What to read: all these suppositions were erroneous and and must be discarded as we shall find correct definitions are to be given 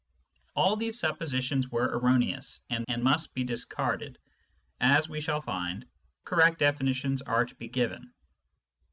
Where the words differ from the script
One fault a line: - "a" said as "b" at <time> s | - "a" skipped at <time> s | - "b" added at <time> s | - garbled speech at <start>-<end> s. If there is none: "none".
none